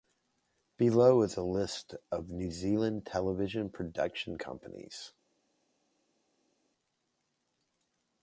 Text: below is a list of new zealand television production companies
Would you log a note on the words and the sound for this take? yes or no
no